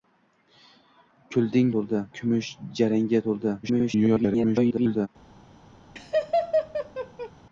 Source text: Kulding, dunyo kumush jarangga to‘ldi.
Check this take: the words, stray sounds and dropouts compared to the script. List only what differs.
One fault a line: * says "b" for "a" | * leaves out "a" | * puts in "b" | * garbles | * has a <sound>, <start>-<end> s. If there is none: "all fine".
* says "to‘ldi" for "dunyo"
* garbles
* has a laugh, 6.0-7.3 s